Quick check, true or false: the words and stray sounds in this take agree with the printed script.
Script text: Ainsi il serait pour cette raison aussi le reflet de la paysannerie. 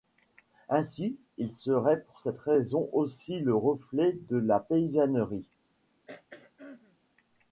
false